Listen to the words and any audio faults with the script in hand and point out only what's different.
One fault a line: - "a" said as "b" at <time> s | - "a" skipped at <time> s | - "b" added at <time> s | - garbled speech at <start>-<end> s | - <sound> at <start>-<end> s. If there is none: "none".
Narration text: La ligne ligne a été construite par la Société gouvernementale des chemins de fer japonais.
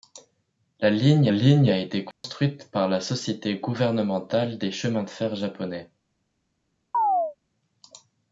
- dropout at 2.1-2.2 s
- chirp at 6.9-7.4 s